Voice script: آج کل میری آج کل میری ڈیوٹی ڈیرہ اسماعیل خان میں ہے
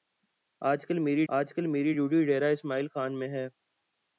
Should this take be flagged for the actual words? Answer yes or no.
no